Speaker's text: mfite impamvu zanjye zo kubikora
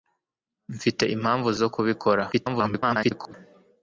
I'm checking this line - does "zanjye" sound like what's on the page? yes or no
no